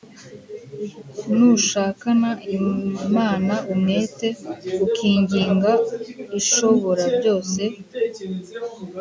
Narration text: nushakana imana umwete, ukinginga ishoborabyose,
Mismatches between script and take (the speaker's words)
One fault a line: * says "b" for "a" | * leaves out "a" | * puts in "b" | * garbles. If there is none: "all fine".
all fine